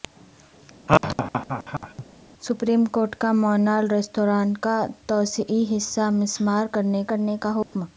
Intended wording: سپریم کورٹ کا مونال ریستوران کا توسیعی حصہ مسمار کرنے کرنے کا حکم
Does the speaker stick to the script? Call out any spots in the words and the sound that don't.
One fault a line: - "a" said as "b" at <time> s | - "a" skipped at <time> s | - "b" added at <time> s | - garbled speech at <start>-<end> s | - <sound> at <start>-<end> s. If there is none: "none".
- laugh at 0.9-2.0 s
- dropout at 7.6-7.7 s